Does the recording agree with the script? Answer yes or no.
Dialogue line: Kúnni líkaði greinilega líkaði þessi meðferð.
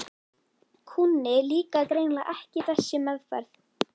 no